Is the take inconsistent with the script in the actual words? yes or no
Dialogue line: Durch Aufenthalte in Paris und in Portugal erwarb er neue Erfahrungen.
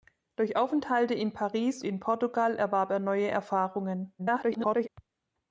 yes